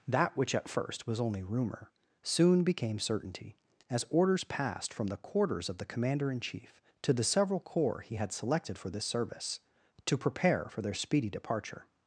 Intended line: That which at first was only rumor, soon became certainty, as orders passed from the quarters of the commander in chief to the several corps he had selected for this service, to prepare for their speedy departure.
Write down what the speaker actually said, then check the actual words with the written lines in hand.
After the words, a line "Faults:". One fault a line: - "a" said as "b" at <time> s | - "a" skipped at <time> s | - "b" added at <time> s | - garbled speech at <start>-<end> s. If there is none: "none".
That which at first was only rumor, soon became certainty, as orders passed from the quarters of the commander in chief to the several corps he had selected for this service, to prepare for their speedy departure.
Faults:
none